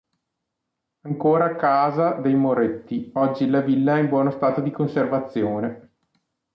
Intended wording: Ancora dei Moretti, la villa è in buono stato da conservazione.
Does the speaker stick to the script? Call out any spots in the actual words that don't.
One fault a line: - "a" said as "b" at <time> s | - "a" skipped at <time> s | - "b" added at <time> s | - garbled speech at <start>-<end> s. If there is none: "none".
- "casa" added at 1.6 s
- "oggi" added at 3.1 s
- "da" said as "di" at 4.6 s